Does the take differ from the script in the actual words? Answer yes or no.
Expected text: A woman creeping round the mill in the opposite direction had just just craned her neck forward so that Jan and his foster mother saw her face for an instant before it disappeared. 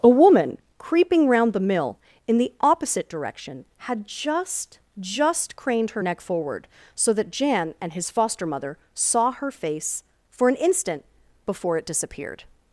no